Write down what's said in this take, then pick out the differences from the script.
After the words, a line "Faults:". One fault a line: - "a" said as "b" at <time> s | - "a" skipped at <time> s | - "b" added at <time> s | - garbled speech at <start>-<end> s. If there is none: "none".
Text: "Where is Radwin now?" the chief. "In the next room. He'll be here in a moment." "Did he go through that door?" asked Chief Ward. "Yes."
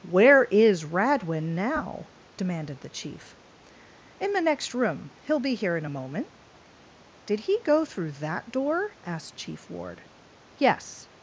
"Where is Radwin now?" demanded the chief. "In the next room. He'll be here in a moment." "Did he go through that door?" asked Chief Ward. "Yes."
Faults:
- "demanded" added at 2.4 s